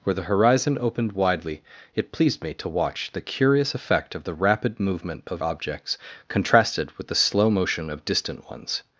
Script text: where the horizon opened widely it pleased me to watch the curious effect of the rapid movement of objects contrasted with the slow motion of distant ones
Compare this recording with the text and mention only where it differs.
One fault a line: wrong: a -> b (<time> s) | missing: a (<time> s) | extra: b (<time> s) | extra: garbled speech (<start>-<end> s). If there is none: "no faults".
no faults